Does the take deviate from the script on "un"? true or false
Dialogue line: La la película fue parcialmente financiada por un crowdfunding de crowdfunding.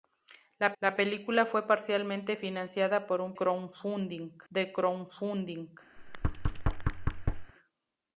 false